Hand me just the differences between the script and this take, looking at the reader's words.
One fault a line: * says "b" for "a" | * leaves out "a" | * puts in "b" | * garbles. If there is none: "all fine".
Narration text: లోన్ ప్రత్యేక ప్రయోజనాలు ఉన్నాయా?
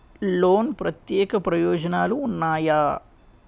all fine